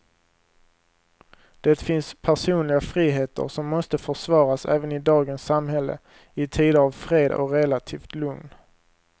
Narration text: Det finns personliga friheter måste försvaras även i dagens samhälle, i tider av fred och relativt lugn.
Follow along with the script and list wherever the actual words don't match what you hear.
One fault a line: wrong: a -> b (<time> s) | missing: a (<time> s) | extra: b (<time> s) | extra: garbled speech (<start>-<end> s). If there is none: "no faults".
extra: som (3.5 s)